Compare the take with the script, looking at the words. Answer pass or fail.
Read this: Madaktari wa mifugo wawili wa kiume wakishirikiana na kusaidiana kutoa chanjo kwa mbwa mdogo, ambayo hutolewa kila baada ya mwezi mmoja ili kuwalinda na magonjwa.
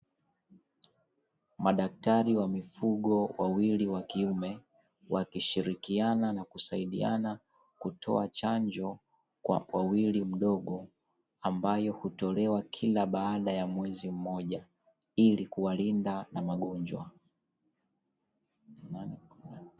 fail